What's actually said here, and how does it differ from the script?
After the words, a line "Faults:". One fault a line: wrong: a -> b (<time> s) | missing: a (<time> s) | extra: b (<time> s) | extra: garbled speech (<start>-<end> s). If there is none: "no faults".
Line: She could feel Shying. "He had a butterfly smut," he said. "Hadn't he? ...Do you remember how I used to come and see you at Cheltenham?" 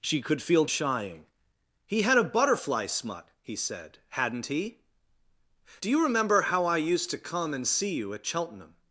She could feel Shying. "He had a butterfly smut," he said. "Hadn't he? ...Do you remember how I used to come and see you at Cheltenham?"
Faults:
no faults